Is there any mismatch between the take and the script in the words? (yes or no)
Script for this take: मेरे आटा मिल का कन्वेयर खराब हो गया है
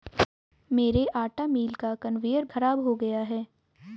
no